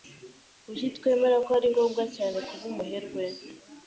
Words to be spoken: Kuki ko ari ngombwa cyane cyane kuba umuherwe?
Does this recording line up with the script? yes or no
no